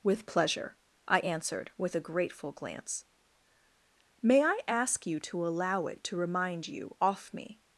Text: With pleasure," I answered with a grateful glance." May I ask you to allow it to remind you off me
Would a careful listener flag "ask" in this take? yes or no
no